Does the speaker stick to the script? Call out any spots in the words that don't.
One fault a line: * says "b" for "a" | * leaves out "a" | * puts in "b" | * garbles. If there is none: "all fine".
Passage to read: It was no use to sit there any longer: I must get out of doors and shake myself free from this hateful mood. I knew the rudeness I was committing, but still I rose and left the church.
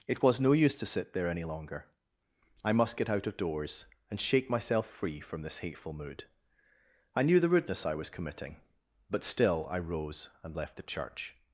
all fine